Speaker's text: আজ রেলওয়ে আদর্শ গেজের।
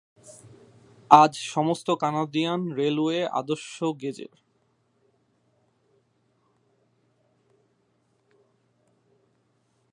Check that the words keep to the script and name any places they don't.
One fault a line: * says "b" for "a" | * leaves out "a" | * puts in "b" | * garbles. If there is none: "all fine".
* puts in "সমস্ত কানাডিয়ান"